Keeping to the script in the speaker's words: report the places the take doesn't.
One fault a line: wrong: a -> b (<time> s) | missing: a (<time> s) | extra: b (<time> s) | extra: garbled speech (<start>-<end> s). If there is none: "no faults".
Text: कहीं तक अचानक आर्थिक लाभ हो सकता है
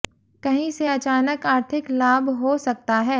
wrong: तक -> से (0.7 s)